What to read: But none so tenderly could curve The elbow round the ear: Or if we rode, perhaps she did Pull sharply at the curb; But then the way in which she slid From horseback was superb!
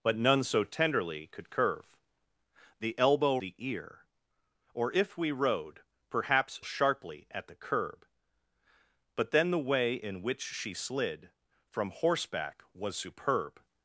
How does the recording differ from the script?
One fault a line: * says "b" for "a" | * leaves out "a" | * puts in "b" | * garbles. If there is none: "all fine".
* leaves out "round"
* leaves out "she did Pull"